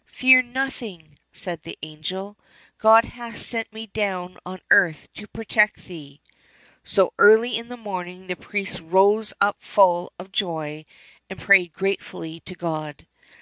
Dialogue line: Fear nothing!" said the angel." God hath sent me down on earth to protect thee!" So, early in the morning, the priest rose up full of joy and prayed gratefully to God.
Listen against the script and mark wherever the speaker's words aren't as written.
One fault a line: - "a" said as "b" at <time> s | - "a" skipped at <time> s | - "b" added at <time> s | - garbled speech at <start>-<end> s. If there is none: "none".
none